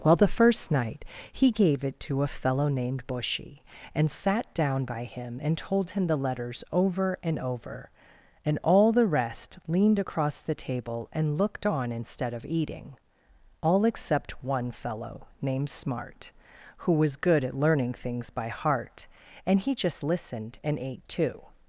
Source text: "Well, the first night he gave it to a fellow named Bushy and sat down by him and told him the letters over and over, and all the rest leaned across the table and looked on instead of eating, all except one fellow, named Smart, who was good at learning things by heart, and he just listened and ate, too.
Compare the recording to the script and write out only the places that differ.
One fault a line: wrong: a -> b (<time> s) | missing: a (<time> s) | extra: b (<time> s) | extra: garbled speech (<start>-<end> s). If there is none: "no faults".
no faults